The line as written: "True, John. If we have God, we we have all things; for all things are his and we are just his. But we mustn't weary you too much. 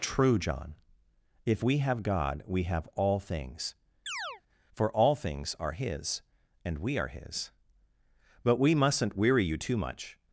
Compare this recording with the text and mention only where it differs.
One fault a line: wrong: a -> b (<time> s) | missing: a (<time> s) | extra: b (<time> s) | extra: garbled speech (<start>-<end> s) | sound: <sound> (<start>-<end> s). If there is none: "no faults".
missing: we (2.6 s)
sound: chirp (4.1-4.4 s)
missing: just (7.1 s)